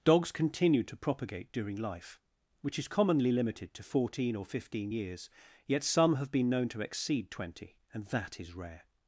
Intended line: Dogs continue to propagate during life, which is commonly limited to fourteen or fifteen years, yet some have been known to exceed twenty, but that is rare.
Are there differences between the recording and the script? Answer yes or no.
yes